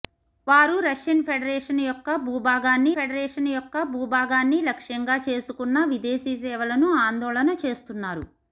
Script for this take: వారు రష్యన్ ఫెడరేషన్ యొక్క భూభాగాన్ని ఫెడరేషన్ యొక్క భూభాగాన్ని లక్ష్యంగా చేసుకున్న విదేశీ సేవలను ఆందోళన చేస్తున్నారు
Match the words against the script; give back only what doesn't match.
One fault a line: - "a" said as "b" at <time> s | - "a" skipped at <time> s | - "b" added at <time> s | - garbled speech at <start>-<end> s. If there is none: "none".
none